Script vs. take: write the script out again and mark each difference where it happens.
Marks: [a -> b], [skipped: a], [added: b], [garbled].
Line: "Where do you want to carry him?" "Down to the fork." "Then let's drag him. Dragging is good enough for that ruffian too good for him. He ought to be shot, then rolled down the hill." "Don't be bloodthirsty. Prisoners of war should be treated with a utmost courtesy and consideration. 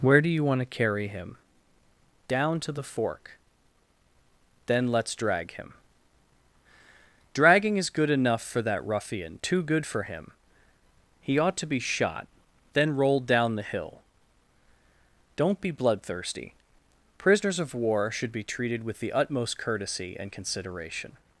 "Where do you want to carry him?" "Down to the fork." "Then let's drag him. Dragging is good enough for that ruffian too good for him. He ought to be shot, then rolled down the hill." "Don't be bloodthirsty. Prisoners of war should be treated with [a -> the] utmost courtesy and consideration.